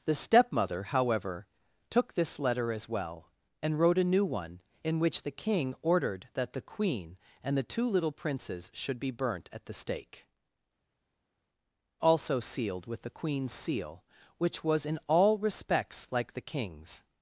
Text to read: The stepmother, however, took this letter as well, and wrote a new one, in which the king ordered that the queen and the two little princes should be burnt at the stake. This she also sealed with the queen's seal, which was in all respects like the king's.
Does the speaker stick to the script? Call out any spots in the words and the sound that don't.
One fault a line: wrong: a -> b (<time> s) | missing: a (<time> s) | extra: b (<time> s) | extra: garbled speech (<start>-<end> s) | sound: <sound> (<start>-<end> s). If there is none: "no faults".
missing: This she (10.3 s)